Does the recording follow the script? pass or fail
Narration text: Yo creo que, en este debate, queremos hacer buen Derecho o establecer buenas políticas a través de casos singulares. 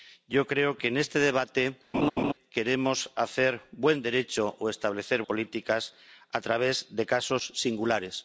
fail